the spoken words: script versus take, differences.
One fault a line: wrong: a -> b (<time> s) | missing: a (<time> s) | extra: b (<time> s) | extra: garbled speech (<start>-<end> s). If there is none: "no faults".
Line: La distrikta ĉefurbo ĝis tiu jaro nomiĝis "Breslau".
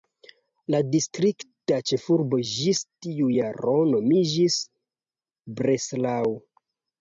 no faults